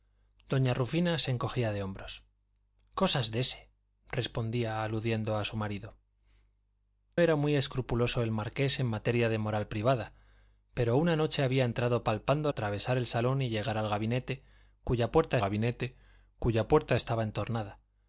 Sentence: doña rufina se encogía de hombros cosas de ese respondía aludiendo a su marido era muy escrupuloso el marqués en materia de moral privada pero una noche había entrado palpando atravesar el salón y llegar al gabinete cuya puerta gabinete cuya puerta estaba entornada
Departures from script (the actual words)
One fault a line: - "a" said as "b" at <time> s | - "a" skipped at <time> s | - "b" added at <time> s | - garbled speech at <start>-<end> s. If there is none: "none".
none